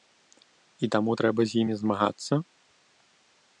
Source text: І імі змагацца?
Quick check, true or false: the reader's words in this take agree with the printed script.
false